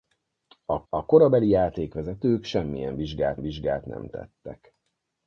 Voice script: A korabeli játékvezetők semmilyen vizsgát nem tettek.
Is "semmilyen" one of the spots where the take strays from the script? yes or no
no